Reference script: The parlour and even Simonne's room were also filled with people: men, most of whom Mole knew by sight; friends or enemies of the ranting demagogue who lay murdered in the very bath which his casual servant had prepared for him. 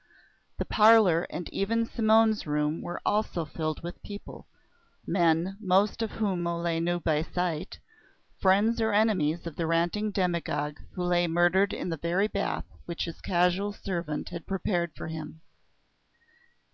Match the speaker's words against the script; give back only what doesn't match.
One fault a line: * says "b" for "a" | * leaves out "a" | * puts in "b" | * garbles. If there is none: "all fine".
all fine